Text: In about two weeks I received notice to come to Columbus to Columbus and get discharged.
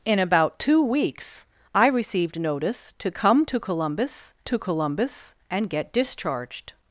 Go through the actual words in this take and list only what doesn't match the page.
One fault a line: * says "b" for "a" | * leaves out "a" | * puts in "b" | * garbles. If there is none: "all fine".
all fine